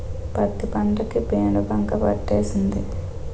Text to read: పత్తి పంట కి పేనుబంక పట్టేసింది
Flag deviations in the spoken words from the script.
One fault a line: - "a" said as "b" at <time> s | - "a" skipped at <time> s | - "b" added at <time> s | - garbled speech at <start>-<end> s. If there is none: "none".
none